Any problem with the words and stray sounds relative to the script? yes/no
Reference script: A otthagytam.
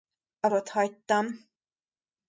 no